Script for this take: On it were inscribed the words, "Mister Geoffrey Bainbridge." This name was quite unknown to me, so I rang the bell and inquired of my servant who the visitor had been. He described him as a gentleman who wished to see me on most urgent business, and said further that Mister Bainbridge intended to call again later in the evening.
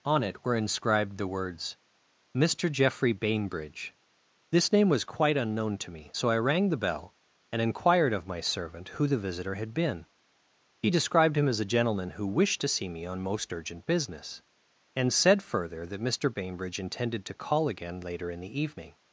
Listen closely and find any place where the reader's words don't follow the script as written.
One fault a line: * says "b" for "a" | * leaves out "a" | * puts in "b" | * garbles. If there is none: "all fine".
all fine